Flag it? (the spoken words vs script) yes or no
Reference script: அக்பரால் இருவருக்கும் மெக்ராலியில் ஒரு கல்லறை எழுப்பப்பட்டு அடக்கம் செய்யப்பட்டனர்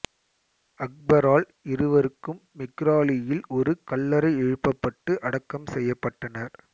no